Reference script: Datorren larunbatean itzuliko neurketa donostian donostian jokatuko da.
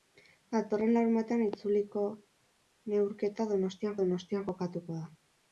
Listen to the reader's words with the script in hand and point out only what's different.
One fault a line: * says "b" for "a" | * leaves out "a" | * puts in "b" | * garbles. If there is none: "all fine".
all fine